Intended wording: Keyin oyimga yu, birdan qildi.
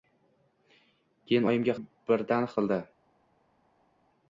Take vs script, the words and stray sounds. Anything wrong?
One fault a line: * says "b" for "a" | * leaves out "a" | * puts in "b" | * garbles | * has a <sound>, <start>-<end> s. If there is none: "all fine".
all fine